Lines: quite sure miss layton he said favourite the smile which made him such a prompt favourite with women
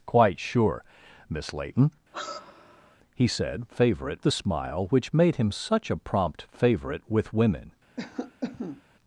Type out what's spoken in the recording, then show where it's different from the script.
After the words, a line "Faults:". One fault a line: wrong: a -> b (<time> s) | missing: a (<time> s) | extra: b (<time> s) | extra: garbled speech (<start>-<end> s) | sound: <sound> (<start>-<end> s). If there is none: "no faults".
quite sure miss layton he said favourite the smile which made him such a prompt favourite with women
Faults:
sound: sigh (2.1-3.0 s)
sound: cough (8.0-8.8 s)